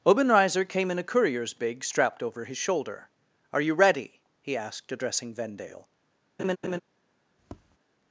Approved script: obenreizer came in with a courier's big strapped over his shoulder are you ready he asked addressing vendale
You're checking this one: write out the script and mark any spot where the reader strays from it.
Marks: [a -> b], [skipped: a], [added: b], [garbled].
obenreizer came in [skipped: with] a courier's big strapped over his shoulder are you ready he asked addressing vendale